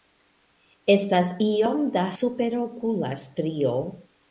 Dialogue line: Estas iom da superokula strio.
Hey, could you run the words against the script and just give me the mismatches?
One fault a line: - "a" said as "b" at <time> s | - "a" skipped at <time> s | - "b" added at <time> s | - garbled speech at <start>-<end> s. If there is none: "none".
none